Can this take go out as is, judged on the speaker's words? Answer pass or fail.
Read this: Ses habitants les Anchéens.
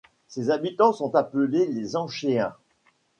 fail